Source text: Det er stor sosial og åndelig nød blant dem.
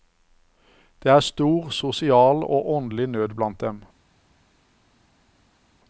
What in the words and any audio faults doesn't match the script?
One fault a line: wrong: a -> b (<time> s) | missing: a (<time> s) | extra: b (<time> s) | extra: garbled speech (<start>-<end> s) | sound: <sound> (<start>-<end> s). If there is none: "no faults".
no faults